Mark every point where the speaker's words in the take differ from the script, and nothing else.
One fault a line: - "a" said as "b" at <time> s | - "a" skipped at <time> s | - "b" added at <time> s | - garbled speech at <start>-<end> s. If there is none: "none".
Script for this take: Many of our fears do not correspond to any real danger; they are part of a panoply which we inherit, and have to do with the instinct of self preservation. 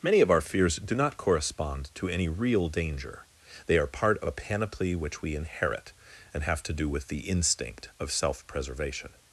none